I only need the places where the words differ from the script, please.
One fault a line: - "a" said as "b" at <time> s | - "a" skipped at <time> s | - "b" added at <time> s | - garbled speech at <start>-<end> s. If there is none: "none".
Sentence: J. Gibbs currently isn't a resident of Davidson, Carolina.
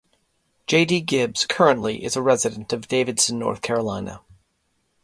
- "D" added at 0.8 s
- "isn't" said as "is" at 2.0 s
- "North" added at 3.4 s